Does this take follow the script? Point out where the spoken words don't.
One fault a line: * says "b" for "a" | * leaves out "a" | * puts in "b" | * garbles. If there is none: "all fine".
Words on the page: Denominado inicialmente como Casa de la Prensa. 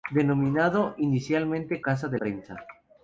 * leaves out "como"
* leaves out "la"